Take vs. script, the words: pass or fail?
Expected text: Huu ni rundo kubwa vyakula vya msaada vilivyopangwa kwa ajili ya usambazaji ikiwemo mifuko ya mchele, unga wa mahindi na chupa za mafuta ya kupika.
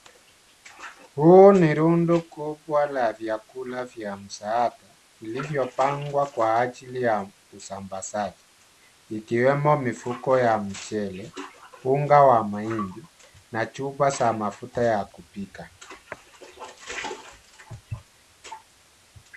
fail